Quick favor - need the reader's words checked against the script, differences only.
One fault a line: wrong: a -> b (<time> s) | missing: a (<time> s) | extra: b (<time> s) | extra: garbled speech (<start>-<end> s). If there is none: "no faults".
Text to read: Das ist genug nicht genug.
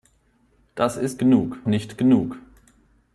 no faults